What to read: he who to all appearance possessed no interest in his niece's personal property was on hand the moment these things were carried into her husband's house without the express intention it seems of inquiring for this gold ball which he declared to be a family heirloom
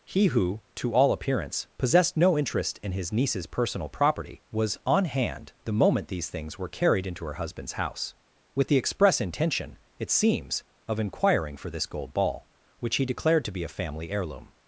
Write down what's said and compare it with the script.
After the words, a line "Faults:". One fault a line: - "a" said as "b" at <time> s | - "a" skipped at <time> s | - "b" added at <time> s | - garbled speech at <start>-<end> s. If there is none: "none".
he who to all appearance possessed no interest in his niece's personal property was on hand the moment these things were carried into her husband's house with the express intention it seems of inquiring for this gold ball which he declared to be a family heirloom
Faults:
- "without" said as "with" at 8.5 s